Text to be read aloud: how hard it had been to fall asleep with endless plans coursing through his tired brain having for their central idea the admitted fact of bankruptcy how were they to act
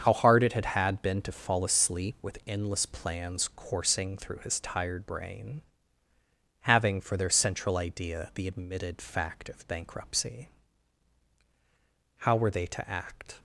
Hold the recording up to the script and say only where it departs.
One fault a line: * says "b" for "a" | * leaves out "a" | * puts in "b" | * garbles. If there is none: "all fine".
* puts in "had"